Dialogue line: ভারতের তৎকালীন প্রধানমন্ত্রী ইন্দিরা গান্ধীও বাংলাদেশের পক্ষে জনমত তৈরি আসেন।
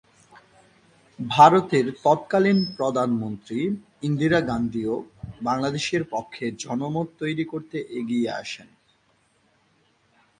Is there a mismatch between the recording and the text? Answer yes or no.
yes